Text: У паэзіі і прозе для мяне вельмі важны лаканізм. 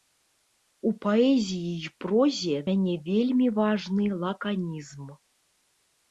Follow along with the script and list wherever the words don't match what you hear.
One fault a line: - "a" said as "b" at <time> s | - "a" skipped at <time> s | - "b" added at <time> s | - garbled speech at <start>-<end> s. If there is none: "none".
- "для" skipped at 2.6 s